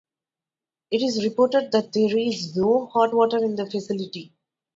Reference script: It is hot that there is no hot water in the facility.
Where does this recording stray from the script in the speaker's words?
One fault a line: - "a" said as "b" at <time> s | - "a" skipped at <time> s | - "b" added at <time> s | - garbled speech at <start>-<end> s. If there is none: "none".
- "hot" said as "reported" at 1.2 s